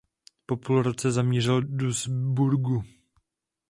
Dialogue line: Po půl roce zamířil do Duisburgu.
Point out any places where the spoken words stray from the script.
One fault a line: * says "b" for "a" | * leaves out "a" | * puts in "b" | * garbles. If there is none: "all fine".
* leaves out "do"